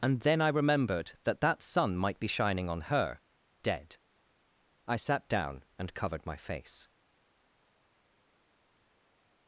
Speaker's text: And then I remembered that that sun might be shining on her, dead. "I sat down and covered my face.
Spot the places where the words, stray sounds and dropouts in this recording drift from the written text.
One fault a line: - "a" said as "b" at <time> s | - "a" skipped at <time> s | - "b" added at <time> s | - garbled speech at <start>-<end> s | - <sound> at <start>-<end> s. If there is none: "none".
none